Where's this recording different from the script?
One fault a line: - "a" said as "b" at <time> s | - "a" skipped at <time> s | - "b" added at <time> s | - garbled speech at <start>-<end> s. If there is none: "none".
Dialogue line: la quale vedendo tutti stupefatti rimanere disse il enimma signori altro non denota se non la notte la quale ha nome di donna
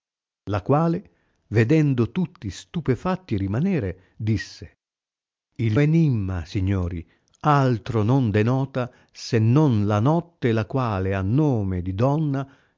none